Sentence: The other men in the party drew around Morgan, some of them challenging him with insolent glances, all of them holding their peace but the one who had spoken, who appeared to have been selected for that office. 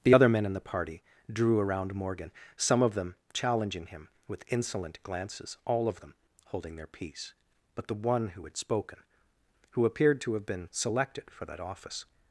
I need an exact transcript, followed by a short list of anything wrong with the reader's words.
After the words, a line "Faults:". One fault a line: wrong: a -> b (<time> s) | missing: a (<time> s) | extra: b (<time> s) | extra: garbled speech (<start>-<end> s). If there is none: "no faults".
The other men in the party drew around Morgan, some of them challenging him with insolent glances, all of them holding their peace but the one who had spoken, who appeared to have been selected for that office.
Faults:
no faults